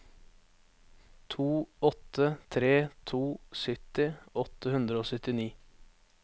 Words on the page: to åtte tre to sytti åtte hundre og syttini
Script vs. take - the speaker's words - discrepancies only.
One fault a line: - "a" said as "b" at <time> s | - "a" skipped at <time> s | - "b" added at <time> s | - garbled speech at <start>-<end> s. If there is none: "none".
none